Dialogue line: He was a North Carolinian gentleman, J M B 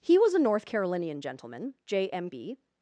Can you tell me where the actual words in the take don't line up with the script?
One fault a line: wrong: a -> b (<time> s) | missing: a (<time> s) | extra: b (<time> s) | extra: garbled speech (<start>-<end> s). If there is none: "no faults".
no faults